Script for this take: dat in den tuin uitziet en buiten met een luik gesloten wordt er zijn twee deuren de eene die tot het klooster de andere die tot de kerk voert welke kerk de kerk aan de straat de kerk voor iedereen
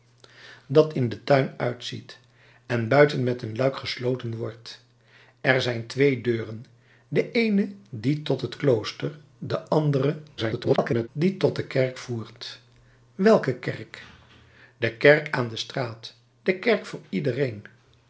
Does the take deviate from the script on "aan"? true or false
false